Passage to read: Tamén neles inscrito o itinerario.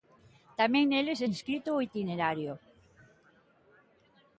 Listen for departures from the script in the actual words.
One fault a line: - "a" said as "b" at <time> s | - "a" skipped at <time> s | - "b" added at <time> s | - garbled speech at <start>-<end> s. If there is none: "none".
none